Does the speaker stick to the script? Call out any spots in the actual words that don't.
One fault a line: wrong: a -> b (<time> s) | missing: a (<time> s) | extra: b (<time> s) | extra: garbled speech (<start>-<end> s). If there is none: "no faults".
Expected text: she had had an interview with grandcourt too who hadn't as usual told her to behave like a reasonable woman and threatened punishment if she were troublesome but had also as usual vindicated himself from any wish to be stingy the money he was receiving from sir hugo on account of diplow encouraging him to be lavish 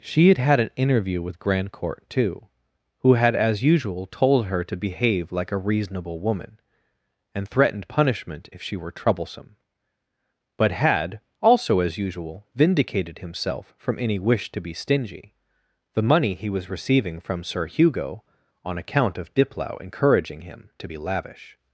wrong: hadn't -> had (3.1 s)